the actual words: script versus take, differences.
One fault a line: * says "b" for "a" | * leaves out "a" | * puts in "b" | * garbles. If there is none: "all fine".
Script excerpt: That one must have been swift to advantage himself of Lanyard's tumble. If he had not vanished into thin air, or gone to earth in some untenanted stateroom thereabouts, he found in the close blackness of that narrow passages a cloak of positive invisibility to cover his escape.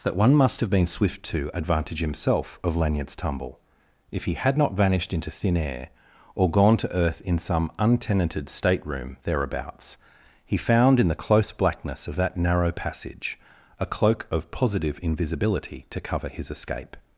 * says "passage" for "passages"